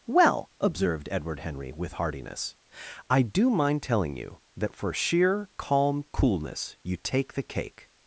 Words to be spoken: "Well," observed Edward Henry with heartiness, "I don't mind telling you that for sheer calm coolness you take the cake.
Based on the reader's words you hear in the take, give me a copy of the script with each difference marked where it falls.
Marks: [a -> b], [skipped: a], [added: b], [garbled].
"Well," observed Edward Henry with heartiness, "I [don't -> do] mind telling you that for sheer calm coolness you take the cake.